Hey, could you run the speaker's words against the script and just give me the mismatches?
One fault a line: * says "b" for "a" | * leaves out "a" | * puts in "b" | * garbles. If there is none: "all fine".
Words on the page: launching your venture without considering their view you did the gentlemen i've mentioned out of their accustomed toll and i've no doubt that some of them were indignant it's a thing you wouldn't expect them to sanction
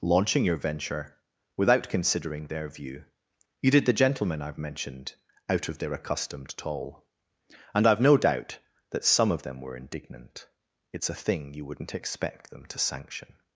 all fine